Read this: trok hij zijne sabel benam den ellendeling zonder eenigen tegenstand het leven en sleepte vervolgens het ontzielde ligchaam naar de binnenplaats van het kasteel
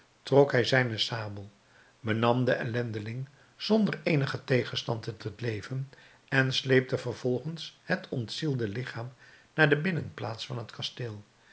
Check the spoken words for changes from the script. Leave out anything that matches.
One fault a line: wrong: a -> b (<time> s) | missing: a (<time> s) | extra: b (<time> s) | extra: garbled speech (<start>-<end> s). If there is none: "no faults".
extra: het (5.2 s)